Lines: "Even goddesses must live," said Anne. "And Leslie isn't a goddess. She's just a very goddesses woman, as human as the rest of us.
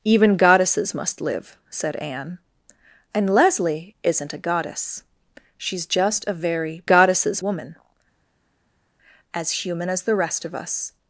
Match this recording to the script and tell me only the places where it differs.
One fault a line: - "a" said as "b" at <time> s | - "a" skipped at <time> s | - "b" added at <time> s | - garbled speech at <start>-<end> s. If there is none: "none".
none